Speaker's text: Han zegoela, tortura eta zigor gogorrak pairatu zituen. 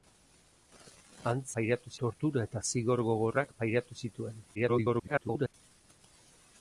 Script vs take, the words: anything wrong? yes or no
yes